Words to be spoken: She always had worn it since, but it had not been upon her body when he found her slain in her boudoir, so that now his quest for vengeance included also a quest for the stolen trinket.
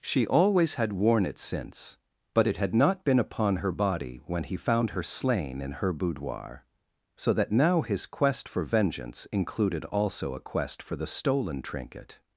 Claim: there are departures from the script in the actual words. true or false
false